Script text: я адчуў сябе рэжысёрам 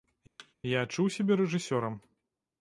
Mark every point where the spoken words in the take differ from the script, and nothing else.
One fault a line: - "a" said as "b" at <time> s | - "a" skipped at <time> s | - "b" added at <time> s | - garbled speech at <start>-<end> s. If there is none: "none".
none